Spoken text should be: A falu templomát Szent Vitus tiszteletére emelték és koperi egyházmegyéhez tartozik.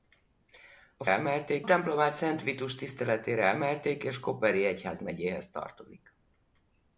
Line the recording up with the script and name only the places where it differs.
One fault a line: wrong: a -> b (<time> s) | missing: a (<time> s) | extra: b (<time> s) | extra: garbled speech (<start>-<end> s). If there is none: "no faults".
wrong: falu -> emelték (1.1 s)